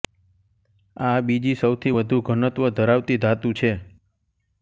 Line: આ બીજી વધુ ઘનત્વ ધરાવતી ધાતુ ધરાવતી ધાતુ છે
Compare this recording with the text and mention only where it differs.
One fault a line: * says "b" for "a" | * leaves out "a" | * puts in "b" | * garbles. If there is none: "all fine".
* puts in "સૌથી"
* leaves out "ધરાવતી ધાતુ"